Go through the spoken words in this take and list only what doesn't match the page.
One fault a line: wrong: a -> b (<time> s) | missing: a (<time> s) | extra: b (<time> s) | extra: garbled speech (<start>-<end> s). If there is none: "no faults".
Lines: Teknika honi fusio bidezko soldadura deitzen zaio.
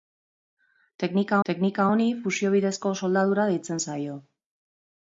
extra: teknika (1.5 s)